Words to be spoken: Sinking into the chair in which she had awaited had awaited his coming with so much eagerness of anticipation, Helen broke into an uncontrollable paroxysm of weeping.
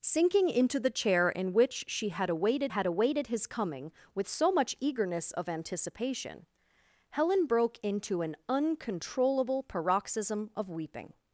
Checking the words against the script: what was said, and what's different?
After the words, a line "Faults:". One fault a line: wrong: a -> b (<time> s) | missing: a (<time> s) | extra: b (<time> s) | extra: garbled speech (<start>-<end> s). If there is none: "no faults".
Sinking into the chair in which she had awaited had awaited his coming with so much eagerness of anticipation, Helen broke into an uncontrollable paroxysm of weeping.
Faults:
no faults